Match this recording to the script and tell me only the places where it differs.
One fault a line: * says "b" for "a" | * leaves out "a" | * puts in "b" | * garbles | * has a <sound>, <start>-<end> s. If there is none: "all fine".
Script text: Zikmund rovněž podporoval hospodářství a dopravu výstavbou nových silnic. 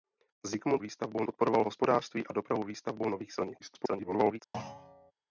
* says "výstavbou" for "rovněž"
* garbles
* has a thud, 4.5-5.1 s